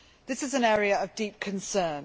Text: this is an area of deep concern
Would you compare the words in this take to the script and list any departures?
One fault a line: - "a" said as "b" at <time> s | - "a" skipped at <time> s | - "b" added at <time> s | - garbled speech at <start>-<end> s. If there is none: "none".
none